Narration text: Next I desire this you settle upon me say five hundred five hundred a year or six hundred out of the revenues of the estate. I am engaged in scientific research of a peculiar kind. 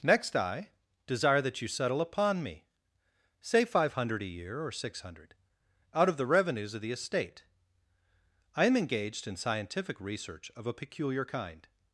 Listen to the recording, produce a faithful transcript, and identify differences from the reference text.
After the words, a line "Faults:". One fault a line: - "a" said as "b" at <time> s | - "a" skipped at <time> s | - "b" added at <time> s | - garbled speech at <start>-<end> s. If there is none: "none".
Next I desire that you settle upon me say five hundred a year or six hundred out of the revenues of the estate. I am engaged in scientific research of a peculiar kind.
Faults:
- "this" said as "that" at 1.4 s
- "five hundred" skipped at 4.2 s